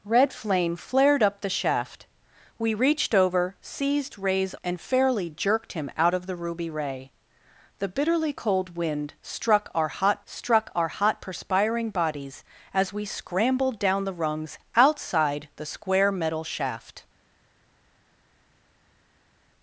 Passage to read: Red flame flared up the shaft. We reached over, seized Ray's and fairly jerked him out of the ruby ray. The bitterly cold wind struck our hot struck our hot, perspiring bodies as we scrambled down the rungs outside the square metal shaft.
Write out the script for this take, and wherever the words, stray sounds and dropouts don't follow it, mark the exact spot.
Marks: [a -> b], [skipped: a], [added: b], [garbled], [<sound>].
Red flame flared up the shaft. We reached over, seized Ray's and fairly jerked him out of the ruby ray. The bitterly cold wind struck our hot struck our hot, perspiring bodies as we scrambled down the rungs outside the square metal shaft.